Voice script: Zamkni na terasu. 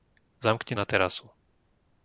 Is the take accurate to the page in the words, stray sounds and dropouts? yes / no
yes